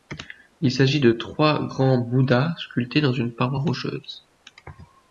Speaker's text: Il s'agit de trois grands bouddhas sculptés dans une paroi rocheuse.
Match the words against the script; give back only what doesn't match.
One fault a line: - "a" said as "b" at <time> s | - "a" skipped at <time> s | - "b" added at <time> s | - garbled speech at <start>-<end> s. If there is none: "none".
none